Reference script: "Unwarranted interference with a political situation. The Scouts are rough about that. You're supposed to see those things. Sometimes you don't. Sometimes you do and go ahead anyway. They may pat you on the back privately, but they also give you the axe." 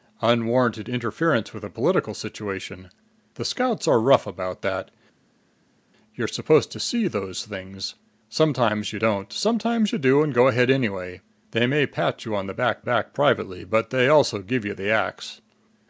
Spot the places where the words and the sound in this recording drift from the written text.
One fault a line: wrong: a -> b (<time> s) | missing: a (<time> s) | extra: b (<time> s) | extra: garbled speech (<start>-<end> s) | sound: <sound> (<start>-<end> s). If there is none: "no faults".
extra: back (12.8 s)